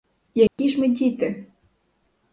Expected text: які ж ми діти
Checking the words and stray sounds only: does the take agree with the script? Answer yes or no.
no